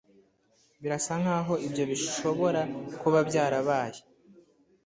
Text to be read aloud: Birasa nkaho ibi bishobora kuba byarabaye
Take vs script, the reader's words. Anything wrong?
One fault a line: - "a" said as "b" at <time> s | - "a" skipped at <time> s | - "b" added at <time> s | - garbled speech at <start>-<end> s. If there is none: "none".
- "ibi" said as "ibyo" at 1.7 s